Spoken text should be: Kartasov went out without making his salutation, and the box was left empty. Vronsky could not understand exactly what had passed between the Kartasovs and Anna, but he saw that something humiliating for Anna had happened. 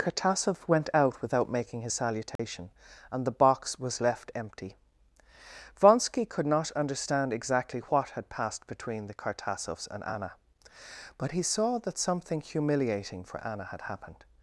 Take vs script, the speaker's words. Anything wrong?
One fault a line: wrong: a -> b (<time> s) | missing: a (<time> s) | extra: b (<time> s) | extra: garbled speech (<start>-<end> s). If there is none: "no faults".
no faults